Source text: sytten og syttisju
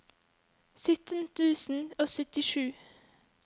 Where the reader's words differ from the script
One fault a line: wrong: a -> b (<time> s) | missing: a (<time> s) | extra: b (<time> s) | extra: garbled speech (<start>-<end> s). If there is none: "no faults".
extra: tusen (1.4 s)